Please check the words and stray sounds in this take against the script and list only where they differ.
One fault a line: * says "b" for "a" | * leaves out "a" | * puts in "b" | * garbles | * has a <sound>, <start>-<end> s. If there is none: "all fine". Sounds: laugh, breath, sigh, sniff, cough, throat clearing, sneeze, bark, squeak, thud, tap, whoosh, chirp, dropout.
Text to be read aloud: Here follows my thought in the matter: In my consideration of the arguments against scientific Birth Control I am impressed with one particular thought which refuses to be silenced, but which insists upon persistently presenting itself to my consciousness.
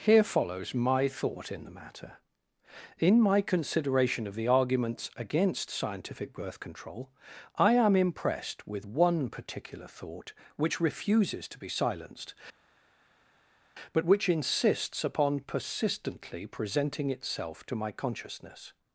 all fine